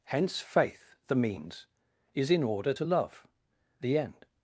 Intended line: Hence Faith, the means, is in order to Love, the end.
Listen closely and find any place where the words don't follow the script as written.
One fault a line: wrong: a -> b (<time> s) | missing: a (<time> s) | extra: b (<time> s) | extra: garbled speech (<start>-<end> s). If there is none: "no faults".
no faults